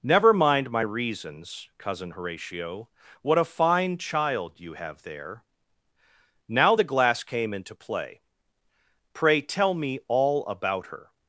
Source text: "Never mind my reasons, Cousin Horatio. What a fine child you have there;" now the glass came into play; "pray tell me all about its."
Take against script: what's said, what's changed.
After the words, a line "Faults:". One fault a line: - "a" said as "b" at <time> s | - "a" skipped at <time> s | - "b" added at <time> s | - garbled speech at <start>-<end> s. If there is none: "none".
"Never mind my reasons, Cousin Horatio. What a fine child you have there;" now the glass came into play; "pray tell me all about her."
Faults:
- "its" said as "her" at 10.9 s